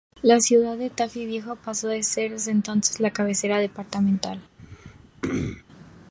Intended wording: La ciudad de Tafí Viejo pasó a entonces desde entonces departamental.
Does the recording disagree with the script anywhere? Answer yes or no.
yes